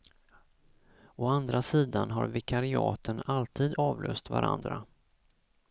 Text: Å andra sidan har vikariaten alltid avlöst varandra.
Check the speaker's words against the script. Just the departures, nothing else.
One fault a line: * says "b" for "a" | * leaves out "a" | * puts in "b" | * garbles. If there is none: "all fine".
all fine